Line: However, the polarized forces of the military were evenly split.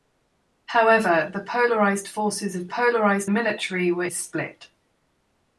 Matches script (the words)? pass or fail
fail